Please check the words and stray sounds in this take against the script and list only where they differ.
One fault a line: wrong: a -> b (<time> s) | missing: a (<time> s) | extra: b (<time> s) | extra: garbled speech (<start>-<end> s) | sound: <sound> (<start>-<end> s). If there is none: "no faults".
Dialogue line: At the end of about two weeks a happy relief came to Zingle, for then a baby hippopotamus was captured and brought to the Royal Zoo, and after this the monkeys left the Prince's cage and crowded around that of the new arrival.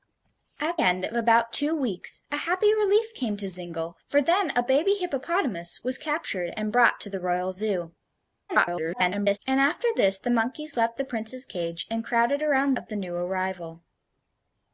missing: the (0.8 s)
extra: garbled speech (8.5-9.4 s)
missing: that (12.8 s)